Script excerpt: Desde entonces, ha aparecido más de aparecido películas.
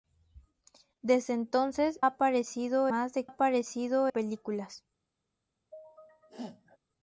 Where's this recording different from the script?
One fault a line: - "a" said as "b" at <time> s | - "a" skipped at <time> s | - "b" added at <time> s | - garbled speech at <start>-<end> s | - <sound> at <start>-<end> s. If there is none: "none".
- sneeze at 5.7-6.8 s